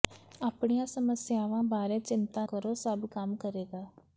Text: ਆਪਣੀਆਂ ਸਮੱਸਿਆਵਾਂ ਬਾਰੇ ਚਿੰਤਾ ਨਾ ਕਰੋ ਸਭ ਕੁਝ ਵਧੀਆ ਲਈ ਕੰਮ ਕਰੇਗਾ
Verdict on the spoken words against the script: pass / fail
fail